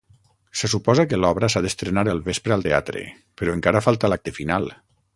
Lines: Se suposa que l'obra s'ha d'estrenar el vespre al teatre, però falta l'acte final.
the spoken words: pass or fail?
fail